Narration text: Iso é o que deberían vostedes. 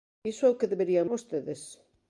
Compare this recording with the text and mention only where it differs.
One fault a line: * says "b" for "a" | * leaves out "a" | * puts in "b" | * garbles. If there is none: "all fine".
all fine